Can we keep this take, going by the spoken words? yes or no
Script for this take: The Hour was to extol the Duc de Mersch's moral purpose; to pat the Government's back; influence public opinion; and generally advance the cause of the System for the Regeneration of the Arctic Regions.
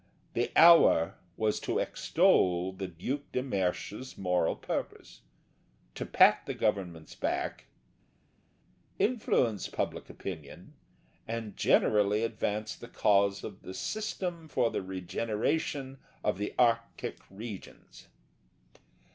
yes